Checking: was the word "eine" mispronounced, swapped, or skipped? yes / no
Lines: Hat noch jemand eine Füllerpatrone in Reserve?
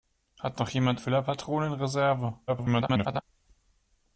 yes